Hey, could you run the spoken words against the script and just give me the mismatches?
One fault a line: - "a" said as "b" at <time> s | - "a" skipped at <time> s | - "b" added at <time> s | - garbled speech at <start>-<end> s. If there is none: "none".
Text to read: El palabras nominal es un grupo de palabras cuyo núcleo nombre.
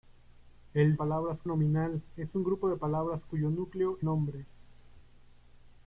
none